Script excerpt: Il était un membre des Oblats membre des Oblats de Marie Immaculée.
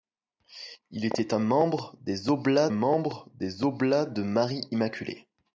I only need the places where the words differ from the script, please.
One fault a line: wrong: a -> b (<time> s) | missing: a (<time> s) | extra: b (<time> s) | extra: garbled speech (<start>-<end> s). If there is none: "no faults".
no faults